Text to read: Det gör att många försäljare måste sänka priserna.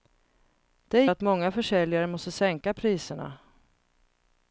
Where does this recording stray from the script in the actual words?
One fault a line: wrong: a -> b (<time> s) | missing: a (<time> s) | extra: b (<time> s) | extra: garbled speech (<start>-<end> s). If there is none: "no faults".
missing: gör (1.1 s)